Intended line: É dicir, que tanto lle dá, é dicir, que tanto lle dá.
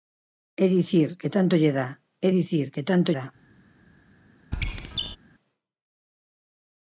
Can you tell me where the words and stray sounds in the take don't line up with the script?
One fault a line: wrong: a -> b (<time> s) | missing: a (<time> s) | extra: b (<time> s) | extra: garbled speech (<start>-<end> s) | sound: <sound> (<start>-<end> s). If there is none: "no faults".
missing: lle (3.1 s)
sound: squeak (4.5-5.2 s)